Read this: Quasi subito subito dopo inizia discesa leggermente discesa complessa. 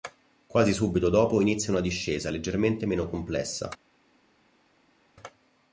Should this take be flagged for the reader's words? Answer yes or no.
yes